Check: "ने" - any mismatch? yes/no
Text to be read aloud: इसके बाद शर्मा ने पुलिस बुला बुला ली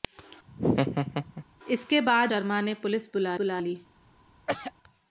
no